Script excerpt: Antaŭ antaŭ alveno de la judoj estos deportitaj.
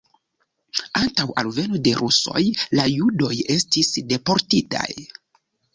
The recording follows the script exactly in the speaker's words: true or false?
false